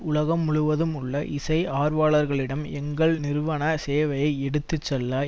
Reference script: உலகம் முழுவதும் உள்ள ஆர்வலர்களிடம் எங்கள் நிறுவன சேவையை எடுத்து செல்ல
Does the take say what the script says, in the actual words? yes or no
no